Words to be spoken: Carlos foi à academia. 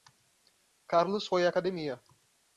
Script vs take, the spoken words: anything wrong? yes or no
no